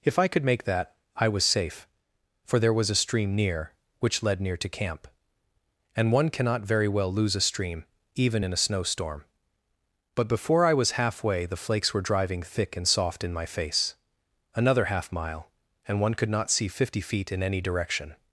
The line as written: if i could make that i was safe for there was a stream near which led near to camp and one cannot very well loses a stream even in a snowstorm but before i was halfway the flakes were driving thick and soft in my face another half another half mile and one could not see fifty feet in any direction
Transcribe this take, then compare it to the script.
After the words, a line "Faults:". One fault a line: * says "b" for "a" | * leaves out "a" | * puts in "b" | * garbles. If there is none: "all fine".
if i could make that i was safe for there was a stream near which led near to camp and one cannot very well lose a stream even in a snowstorm but before i was halfway the flakes were driving thick and soft in my face another half mile and one could not see fifty feet in any direction
Faults:
* says "lose" for "loses"
* leaves out "another half"